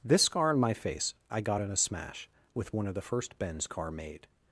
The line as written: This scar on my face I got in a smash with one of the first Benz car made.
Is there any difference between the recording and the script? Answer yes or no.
no